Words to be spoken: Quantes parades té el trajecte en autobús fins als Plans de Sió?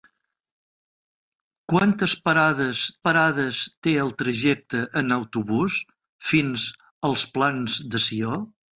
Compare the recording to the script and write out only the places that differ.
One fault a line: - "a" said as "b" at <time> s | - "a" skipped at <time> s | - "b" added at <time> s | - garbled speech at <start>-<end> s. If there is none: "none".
- "parades" added at 3.1 s